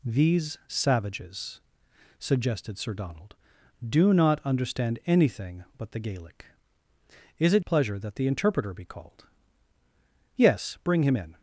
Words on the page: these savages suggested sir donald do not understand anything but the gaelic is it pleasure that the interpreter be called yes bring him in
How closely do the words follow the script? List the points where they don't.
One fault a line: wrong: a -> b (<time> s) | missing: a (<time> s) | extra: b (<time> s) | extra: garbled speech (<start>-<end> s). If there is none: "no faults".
no faults